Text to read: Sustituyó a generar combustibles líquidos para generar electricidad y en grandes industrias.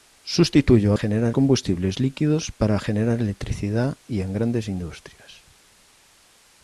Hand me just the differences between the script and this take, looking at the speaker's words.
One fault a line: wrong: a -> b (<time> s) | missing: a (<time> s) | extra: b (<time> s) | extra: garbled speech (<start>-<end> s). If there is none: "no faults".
no faults